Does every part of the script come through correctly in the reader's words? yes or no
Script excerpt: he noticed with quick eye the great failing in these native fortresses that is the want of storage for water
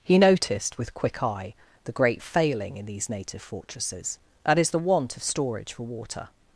yes